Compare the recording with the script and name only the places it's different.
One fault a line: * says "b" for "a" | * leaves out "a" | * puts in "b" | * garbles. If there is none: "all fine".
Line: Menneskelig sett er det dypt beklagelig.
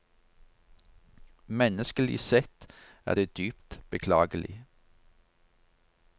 all fine